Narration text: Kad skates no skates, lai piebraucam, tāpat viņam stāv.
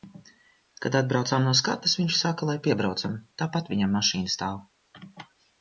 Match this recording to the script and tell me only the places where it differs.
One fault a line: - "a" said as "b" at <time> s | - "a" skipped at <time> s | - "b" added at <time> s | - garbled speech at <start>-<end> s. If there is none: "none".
- "skates" said as "atbraucām" at 1.0 s
- "viņš saka" added at 2.0 s
- "mašīna" added at 4.0 s